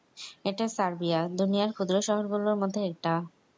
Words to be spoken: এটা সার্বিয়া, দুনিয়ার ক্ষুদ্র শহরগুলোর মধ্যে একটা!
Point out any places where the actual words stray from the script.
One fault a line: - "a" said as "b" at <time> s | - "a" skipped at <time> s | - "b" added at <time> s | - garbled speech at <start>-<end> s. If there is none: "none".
none